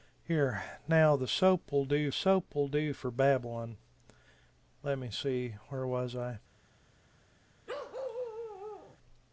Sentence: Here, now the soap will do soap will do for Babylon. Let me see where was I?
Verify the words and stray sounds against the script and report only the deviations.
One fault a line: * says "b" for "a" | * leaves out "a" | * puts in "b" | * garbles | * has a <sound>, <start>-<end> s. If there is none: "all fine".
* has a bark, 7.7-9.0 s